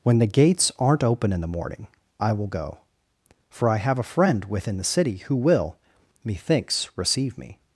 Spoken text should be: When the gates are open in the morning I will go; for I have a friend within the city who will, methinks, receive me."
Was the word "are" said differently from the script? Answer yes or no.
yes